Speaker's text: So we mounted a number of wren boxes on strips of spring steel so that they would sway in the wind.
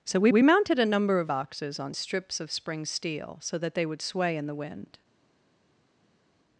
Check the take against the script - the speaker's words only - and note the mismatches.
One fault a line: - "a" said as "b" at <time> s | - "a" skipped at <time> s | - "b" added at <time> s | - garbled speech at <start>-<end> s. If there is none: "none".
- "we" added at 0.3 s
- "wren" skipped at 1.3 s